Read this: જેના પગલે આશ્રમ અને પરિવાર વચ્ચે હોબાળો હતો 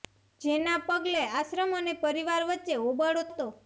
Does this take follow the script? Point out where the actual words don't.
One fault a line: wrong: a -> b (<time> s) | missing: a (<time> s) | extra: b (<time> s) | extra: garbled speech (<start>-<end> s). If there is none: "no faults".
no faults